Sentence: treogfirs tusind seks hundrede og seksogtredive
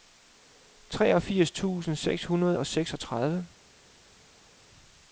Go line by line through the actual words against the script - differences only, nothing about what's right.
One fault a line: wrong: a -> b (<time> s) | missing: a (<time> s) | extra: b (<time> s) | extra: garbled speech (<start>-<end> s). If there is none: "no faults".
no faults